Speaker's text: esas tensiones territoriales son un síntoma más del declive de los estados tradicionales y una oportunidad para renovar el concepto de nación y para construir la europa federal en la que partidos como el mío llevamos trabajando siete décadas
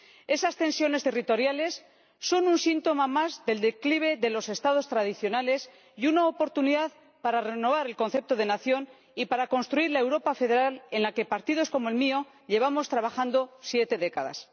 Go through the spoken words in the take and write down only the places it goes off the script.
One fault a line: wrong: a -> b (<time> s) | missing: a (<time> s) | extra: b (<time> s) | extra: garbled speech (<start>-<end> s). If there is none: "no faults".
no faults